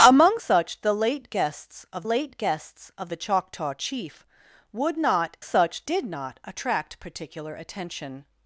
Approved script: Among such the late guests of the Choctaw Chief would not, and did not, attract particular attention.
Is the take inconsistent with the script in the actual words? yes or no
yes